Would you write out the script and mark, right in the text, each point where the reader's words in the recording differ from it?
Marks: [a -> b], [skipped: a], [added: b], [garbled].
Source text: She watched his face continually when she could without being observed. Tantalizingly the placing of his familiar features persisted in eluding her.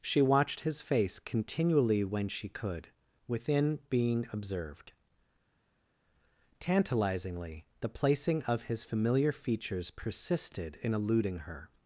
She watched his face continually when she could [without -> within] being observed. Tantalizingly the placing of his familiar features persisted in eluding her.